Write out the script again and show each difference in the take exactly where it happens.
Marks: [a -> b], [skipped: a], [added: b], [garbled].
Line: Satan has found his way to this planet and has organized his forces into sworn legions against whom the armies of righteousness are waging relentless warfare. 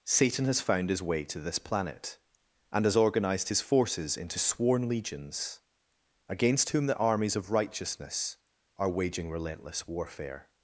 Satan has found his way to this planet and has organized his forces into sworn legions against whom the armies of righteousness are waging relentless warfare.